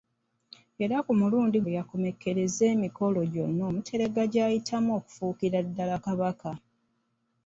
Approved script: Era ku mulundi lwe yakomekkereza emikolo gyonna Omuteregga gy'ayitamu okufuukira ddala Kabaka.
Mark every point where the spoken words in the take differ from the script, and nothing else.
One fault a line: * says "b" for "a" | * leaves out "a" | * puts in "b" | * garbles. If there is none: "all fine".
all fine